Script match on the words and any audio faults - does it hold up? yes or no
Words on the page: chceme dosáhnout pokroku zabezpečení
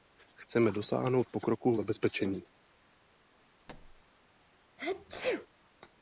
no